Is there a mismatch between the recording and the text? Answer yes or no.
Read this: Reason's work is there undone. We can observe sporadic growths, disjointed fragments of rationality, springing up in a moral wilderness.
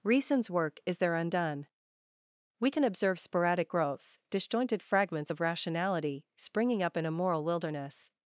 no